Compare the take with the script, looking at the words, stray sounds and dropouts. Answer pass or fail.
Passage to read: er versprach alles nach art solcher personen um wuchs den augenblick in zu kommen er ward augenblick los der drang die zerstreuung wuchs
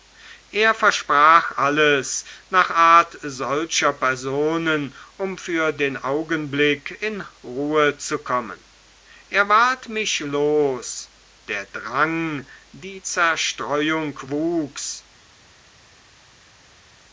fail